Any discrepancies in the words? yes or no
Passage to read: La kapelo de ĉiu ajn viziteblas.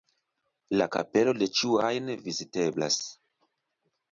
no